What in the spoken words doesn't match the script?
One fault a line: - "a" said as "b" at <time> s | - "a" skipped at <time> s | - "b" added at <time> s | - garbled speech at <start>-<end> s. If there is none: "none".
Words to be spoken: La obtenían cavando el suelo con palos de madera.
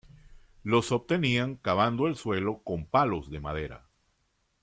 - "La" said as "Los" at 0.6 s